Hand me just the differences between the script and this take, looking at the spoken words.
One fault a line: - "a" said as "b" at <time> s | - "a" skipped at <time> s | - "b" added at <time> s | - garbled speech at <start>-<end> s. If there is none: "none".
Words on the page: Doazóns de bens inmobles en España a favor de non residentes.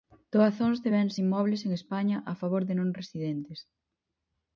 none